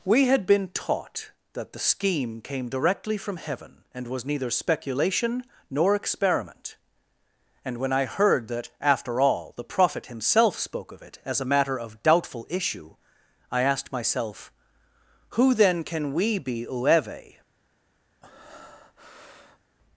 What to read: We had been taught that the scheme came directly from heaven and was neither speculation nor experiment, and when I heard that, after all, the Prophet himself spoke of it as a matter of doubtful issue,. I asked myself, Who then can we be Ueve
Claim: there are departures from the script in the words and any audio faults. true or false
true